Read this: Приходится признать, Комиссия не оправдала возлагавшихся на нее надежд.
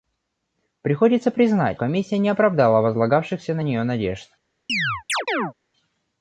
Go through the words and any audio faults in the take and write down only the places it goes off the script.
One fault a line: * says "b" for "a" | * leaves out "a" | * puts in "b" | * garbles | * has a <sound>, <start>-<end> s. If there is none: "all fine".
* has a chirp, 4.7-5.5 s